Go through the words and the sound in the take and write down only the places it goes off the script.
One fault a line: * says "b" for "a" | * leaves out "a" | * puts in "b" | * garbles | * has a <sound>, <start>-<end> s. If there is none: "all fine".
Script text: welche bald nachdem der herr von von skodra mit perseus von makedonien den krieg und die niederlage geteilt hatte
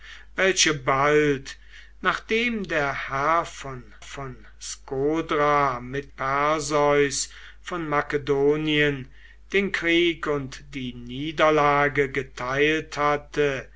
all fine